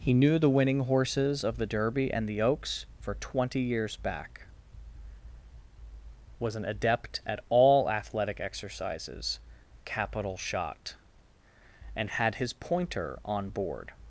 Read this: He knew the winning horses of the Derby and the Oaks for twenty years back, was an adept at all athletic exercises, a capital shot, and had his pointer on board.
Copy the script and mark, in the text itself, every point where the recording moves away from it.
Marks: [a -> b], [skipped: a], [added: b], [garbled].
He knew the winning horses of the Derby and the Oaks for twenty years back, was an adept at all athletic exercises, [skipped: a] capital shot, and had his pointer on board.